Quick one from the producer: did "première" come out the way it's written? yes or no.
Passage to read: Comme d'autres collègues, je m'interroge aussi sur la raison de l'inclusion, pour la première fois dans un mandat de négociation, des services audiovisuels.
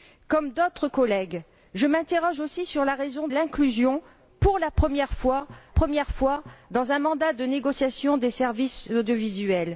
yes